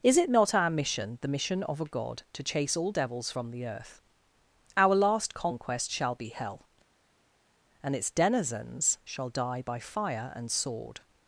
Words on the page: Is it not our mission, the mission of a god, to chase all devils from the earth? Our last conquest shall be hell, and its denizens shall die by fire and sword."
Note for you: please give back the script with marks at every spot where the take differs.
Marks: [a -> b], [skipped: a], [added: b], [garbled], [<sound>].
Is it not our mission, the mission of a god, to chase all devils from the earth? Our last conquest shall be hell, and its denizens shall die by fire and sword."